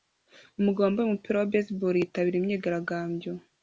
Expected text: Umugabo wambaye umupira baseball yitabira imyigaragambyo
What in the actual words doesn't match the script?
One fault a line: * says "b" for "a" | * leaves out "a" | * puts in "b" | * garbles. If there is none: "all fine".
* puts in "wa"